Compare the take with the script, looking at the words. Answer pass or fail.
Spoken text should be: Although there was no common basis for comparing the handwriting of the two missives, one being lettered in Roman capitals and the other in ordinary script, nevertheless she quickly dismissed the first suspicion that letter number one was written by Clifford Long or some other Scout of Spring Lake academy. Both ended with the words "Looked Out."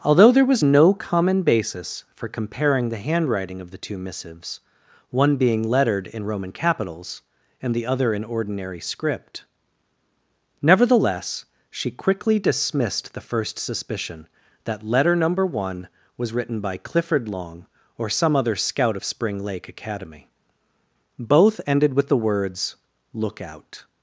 fail